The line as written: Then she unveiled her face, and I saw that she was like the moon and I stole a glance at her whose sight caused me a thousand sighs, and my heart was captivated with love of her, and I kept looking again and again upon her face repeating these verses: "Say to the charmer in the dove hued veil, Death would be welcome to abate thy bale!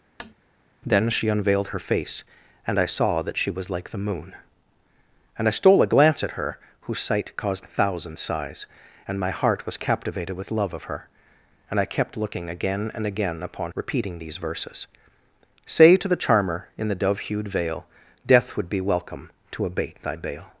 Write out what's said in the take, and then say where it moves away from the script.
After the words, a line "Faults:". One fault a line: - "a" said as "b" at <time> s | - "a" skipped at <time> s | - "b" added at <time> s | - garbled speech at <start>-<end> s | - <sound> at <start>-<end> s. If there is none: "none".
Then she unveiled her face, and I saw that she was like the moon and I stole a glance at her whose sight caused a thousand sighs, and my heart was captivated with love of her, and I kept looking again and again upon repeating these verses: "Say to the charmer in the dove hued veil, Death would be welcome to abate thy bale!
Faults:
- tap at 0.2-0.3 s
- "me" skipped at 7.7 s
- "her face" skipped at 13.7 s